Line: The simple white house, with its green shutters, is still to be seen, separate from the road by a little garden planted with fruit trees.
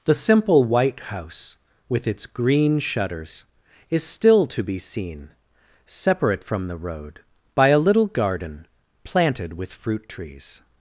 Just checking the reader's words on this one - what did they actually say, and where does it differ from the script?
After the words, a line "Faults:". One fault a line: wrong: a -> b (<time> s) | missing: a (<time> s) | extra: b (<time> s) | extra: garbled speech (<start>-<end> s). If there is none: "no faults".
The simple white house, with its green shutters, is still to be seen, separate from the road by a little garden planted with fruit trees.
Faults:
no faults